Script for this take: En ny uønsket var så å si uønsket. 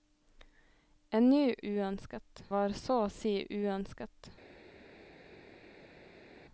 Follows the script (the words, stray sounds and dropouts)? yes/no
yes